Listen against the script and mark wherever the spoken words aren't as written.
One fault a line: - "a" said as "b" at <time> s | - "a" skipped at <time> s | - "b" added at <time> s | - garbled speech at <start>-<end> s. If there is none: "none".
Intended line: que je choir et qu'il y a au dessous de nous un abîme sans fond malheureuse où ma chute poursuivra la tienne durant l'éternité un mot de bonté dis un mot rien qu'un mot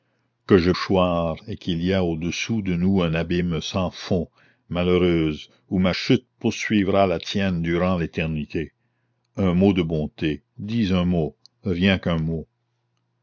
none